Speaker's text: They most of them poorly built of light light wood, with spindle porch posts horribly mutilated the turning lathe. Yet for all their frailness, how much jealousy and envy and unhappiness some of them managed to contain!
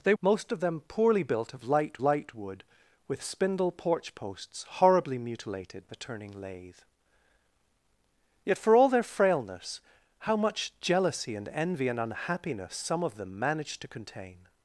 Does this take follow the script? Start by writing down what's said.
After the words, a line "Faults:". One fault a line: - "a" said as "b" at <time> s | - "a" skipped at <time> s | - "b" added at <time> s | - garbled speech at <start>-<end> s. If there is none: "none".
They most of them poorly built of light light wood, with spindle porch posts horribly mutilated the turning lathe. Yet for all their frailness, how much jealousy and envy and unhappiness some of them managed to contain!
Faults:
none